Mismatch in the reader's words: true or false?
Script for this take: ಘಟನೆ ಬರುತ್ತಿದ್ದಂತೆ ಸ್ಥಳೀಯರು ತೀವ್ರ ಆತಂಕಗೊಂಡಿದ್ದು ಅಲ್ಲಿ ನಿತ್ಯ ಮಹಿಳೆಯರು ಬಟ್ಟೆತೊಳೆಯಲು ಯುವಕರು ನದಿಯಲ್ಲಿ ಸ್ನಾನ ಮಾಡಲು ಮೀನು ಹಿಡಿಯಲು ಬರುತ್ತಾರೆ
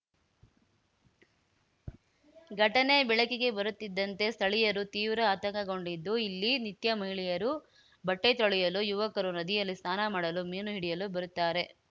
true